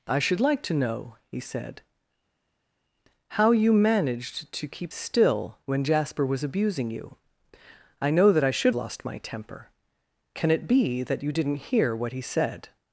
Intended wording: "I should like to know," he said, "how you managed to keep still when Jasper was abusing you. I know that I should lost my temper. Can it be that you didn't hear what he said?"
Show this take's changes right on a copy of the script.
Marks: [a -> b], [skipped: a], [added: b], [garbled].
"I should like to know," he said, "how you managed to keep still when Jasper was abusing you. I know that I should lost my temper. Can it be that you didn't hear what he said?"